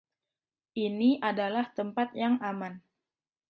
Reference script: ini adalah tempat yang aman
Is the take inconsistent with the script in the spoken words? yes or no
no